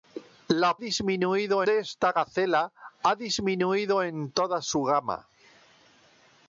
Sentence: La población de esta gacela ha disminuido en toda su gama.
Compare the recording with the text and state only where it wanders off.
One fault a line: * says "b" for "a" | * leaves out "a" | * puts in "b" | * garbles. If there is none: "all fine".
* says "disminuido" for "población"